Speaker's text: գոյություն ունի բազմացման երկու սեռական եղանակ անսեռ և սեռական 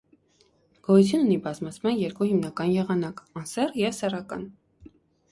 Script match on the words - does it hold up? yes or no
no